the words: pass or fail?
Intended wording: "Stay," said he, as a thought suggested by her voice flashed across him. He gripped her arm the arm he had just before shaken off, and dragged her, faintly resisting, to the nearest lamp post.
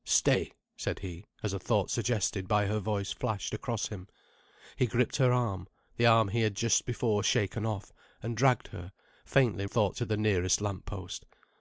fail